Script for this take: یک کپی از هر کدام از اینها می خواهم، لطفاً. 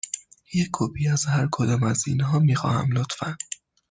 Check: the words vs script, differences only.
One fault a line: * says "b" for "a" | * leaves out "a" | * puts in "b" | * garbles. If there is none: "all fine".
all fine